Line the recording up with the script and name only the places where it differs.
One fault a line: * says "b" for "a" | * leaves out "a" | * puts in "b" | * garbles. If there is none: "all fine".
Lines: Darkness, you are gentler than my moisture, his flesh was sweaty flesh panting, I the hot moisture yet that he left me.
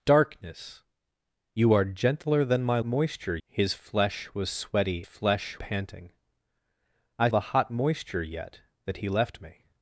all fine